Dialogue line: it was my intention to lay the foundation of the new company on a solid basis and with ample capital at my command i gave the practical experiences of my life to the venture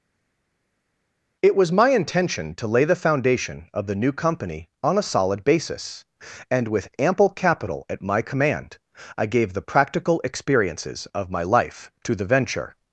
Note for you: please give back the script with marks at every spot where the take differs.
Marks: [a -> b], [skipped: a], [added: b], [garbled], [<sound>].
it was my intention to lay the foundation of the new company on a solid basis and with ample capital at my command i gave the practical experiences of my life to the venture